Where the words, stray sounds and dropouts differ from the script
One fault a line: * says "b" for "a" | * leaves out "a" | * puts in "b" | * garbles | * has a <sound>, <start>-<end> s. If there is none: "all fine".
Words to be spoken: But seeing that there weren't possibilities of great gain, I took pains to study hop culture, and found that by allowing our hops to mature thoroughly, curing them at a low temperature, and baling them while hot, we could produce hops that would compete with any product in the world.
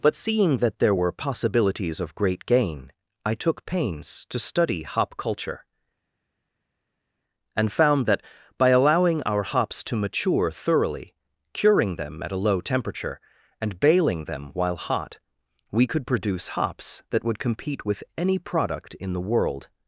* says "were" for "weren't"